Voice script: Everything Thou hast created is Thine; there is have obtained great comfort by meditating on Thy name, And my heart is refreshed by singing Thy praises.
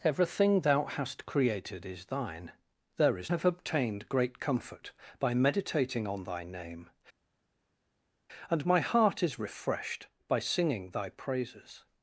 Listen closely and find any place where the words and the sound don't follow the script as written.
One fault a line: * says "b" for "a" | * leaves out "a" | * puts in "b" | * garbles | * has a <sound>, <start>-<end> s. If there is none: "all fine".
all fine